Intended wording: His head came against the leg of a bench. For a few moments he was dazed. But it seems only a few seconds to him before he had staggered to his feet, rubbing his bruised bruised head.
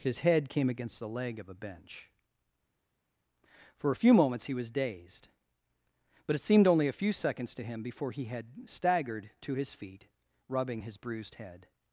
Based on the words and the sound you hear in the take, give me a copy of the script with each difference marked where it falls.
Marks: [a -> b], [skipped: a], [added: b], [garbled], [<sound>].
His head came against the leg of a bench. For a few moments he was dazed. But it [seems -> seemed] only a few seconds to him before he had staggered to his feet, rubbing his bruised [skipped: bruised] head.